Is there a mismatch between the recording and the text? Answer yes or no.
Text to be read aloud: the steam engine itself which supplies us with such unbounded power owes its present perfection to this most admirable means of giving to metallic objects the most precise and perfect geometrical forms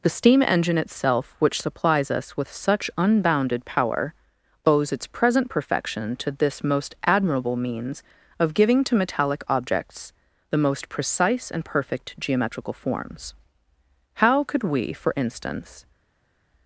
yes